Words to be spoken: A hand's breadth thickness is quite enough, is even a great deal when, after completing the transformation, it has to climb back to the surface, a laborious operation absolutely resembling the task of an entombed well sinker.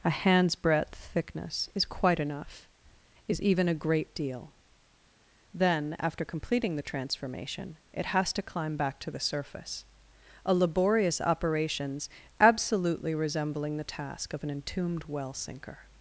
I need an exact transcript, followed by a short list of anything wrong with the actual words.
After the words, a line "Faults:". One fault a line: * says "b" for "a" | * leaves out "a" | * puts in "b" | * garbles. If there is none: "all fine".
A hand's breadth thickness is quite enough, is even a great deal then, after completing the transformation, it has to climb back to the surface, a laborious operations absolutely resembling the task of an entombed well sinker.
Faults:
* says "then" for "when"
* says "operations" for "operation"